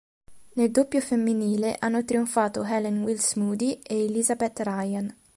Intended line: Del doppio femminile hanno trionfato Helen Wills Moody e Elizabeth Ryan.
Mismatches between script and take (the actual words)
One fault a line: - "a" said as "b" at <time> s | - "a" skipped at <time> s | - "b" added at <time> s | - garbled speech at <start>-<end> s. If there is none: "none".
- "Del" said as "Nel" at 0.5 s